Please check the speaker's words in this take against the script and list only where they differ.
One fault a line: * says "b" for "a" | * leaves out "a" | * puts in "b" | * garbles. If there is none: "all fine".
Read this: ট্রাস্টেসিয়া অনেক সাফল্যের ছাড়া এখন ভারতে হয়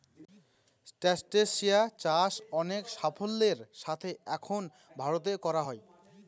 * puts in "চাষ"
* says "সাথে" for "ছাড়া"
* puts in "করা"